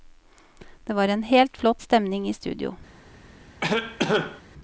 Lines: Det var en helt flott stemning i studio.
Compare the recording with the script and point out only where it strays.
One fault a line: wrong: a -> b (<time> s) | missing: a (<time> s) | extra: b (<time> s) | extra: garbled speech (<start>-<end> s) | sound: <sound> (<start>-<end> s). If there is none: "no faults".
sound: cough (3.6-4.4 s)